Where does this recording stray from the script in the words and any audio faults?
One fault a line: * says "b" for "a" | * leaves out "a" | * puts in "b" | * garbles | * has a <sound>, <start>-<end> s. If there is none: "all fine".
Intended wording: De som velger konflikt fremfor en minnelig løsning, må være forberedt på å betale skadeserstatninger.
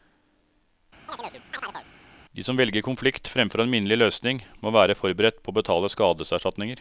* has a chirp, 1.1-1.9 s